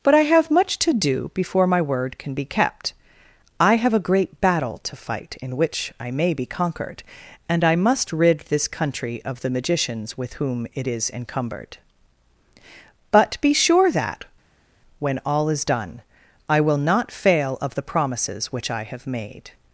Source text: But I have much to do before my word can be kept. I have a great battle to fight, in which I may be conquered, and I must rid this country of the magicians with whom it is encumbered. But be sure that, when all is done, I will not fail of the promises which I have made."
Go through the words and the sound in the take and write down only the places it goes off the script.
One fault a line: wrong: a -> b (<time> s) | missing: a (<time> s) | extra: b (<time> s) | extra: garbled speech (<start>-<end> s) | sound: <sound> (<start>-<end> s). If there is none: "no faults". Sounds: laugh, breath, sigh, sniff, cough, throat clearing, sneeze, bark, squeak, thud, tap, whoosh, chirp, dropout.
no faults